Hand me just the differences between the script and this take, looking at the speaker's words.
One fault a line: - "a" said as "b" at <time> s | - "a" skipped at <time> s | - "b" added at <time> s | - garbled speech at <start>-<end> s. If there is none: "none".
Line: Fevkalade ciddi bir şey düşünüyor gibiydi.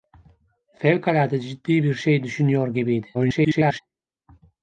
- garbled speech at 3.1-3.8 s